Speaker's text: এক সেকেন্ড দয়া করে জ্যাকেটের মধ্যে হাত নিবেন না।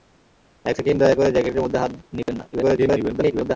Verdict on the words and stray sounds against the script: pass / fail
fail